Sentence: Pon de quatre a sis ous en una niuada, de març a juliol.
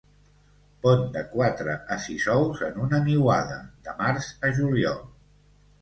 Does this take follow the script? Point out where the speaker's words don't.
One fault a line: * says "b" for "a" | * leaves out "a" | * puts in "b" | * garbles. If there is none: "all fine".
all fine